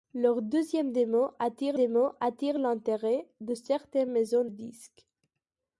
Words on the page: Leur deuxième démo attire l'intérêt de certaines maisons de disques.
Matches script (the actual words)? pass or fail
fail